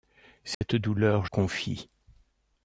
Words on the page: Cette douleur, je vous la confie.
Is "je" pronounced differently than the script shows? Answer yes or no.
yes